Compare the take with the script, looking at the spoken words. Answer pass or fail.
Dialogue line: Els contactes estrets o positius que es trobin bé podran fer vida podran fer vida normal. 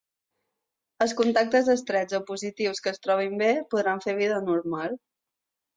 fail